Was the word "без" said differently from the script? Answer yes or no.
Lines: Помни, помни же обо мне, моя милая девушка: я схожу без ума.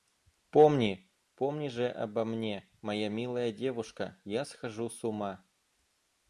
yes